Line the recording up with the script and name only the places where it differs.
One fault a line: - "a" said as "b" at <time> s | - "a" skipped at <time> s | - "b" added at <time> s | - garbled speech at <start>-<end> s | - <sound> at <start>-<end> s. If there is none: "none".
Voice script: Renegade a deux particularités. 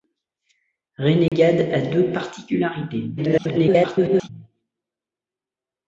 - dropout at 1.3-1.3 s
- garbled speech at 3.2-4.3 s